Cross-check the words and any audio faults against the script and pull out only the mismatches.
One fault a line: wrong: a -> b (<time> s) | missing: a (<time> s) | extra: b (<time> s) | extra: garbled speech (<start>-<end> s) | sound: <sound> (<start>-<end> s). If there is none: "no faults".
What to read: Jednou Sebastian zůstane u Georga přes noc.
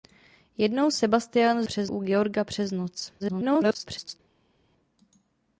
wrong: zůstane -> přes (1.6 s)
extra: garbled speech (3.2-4.2 s)